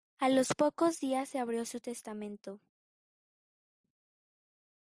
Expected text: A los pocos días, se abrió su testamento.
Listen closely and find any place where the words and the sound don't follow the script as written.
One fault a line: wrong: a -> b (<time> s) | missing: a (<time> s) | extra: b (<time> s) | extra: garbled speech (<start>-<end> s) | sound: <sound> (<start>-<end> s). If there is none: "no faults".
no faults